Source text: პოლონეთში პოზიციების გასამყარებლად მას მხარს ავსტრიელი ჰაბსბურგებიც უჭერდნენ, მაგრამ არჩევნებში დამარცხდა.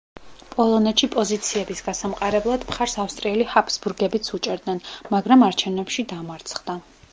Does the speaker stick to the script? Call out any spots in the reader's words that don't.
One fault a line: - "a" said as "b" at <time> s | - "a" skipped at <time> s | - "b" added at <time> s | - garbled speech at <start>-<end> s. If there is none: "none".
- "მას" skipped at 2.6 s